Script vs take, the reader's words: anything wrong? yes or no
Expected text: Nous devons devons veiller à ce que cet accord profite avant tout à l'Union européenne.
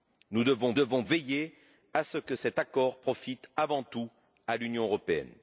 no